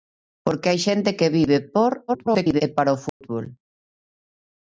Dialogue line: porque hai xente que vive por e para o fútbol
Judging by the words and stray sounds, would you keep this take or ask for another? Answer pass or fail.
fail